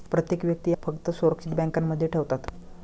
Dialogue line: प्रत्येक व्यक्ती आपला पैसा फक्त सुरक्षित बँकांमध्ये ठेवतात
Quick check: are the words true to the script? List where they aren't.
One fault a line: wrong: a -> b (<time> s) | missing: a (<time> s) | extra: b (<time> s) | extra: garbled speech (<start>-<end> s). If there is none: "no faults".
missing: आपला पैसा (0.7 s)